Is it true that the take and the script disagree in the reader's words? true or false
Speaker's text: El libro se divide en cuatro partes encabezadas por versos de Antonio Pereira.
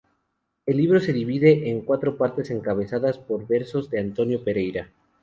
false